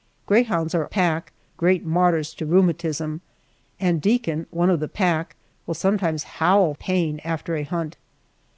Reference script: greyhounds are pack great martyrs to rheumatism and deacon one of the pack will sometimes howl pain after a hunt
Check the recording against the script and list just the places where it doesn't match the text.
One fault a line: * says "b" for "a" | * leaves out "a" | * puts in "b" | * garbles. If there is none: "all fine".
all fine